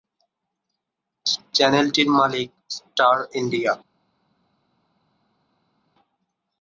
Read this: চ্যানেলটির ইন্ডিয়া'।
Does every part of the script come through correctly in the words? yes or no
no